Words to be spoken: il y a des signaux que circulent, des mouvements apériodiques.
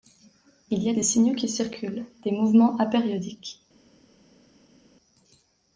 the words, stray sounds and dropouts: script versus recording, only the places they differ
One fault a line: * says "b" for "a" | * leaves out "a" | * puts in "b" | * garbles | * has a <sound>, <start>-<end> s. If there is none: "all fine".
* says "qui" for "que"